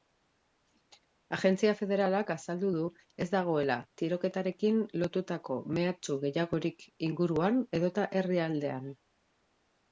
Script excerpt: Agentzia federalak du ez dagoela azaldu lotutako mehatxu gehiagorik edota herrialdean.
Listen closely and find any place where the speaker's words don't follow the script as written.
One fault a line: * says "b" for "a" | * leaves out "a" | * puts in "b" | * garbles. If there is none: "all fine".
* puts in "azaldu"
* says "tiroketarekin" for "azaldu"
* puts in "inguruan"